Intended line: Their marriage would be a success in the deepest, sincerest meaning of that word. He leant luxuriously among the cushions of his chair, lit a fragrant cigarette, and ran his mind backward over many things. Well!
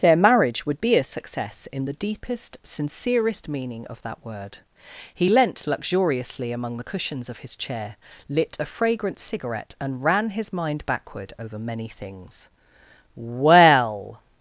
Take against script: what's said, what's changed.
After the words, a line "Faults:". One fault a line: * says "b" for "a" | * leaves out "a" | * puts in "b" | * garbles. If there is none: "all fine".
Their marriage would be a success in the deepest, sincerest meaning of that word. He leant luxuriously among the cushions of his chair, lit a fragrant cigarette, and ran his mind backward over many things. Well!
Faults:
all fine